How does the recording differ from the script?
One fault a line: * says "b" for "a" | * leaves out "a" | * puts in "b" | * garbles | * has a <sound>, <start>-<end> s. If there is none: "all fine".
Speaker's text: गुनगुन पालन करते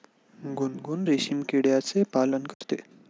* puts in "रेशीम किड्याचे"
* has a dropout, 2.5-2.6 s